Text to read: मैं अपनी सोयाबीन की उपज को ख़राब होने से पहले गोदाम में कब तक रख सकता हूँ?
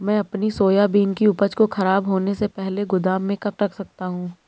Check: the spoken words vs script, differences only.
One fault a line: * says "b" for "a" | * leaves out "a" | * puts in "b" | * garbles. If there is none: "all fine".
* leaves out "तक"